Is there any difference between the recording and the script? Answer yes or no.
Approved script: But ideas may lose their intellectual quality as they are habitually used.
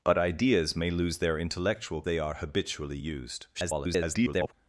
yes